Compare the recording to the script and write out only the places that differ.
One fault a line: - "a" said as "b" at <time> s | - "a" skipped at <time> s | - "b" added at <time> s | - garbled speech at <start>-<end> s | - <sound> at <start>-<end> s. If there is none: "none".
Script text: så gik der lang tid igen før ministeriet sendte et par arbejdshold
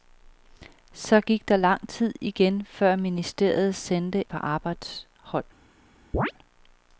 - "et" skipped at 4.2 s
- chirp at 6.1-6.3 s